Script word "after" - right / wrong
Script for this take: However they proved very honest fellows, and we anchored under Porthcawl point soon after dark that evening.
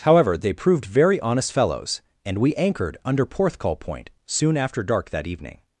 right